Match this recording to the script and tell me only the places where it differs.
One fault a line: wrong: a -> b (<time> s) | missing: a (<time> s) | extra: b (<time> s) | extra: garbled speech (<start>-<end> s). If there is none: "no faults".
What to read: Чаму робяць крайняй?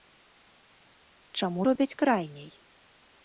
no faults